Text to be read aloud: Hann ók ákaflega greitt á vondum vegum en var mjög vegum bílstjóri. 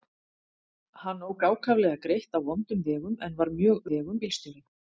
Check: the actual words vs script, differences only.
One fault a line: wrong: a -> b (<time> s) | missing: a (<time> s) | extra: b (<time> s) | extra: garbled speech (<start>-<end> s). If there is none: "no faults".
no faults